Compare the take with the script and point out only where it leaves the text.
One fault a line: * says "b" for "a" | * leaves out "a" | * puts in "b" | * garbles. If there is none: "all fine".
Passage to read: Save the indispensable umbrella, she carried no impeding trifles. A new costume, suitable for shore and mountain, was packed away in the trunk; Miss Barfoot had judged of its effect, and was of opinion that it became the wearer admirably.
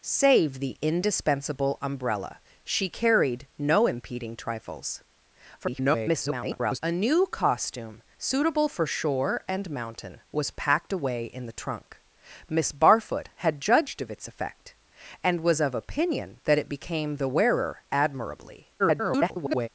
* garbles
* garbles